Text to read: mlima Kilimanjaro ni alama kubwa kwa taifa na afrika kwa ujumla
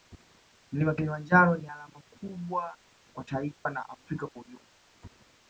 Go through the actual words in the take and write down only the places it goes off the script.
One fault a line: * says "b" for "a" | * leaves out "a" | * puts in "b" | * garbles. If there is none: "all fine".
all fine